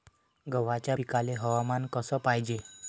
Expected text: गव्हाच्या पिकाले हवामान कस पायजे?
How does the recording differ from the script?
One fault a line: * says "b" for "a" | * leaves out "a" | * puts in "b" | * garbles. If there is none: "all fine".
all fine